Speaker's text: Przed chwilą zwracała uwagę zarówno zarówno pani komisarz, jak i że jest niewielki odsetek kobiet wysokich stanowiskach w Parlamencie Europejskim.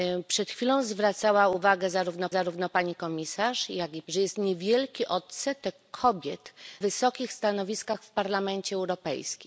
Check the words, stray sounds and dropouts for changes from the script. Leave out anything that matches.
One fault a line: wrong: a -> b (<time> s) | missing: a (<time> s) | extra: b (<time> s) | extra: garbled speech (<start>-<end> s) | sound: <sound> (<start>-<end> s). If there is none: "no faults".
no faults